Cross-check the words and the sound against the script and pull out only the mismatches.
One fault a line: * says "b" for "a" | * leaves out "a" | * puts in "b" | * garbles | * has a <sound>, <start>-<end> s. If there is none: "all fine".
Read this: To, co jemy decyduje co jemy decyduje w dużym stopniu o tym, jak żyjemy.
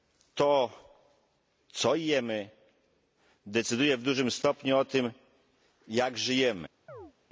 * leaves out "co jemy decyduje"
* has a chirp, 6.9-7.1 s